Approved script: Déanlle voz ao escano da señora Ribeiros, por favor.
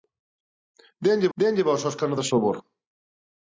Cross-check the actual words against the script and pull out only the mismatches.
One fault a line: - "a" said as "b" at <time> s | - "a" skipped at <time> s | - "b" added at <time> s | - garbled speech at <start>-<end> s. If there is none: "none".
- "déanlle" added at 1.4 s
- "señora Ribeiros por" skipped at 2.3 s